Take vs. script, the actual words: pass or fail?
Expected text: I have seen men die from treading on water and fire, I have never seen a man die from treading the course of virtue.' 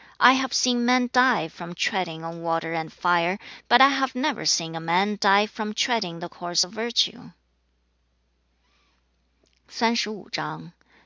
fail